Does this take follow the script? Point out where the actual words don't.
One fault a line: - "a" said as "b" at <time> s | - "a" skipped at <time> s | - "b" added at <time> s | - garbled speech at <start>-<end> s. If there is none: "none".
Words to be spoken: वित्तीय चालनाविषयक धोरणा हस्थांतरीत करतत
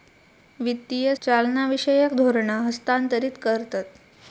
none